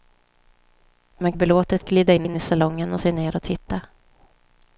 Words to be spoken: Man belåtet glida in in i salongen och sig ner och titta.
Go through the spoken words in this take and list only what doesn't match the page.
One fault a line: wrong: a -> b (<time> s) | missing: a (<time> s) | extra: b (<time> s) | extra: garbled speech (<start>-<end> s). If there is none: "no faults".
no faults